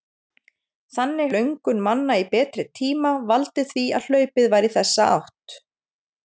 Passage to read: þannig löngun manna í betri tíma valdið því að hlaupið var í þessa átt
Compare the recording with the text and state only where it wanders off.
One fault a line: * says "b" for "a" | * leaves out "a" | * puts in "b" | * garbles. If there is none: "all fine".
all fine